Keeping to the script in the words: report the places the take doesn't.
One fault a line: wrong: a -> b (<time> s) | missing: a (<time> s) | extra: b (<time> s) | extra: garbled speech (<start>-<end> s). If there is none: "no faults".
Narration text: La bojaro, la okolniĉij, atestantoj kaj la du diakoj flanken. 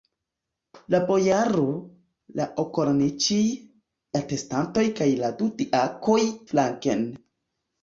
no faults